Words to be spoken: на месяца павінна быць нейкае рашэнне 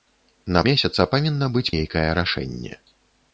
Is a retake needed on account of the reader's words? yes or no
no